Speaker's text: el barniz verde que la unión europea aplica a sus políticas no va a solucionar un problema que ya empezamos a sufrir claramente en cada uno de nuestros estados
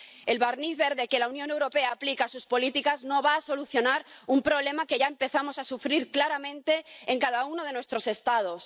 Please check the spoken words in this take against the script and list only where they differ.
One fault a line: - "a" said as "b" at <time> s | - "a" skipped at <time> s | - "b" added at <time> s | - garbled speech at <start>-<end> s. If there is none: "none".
none